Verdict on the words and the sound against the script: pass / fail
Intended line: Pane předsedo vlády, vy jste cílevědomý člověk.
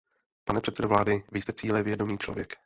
pass